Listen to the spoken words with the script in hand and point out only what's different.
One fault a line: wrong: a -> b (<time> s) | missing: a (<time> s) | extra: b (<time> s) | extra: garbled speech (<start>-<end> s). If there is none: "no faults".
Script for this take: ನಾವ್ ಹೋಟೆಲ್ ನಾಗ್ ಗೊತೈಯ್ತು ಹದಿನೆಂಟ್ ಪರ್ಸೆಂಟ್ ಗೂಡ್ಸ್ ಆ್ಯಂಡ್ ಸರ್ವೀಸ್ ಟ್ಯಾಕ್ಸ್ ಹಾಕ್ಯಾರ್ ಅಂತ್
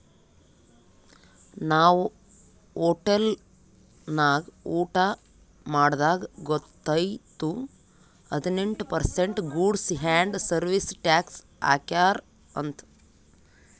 extra: ಊಟಾ ಮಾಡ್ದಾಗ್ (4.8 s)